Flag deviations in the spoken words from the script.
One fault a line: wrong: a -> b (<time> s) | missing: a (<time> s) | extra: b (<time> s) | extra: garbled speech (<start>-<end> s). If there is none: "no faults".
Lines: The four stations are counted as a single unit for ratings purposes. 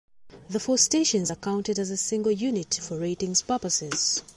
no faults